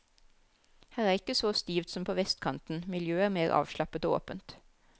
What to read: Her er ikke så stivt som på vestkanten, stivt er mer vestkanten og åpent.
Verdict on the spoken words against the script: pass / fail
fail